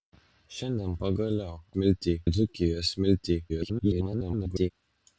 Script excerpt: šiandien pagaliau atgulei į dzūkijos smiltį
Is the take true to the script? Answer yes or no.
no